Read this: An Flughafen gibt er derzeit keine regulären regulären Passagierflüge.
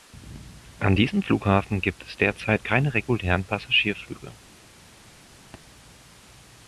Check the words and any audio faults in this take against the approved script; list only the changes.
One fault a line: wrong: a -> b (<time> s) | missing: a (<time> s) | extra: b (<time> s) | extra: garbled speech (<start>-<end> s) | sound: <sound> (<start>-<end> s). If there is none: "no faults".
extra: diesem (1.0 s)
wrong: er -> es (2.1 s)
missing: regulären (3.4 s)
sound: thud (5.5-5.6 s)